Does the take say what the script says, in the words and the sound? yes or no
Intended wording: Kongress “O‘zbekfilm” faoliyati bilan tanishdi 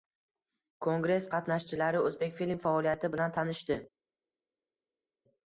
no